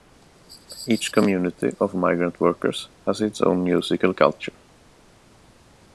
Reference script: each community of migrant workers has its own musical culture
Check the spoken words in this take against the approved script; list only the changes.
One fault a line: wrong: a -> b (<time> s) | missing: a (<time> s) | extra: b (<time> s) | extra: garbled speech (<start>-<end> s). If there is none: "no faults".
no faults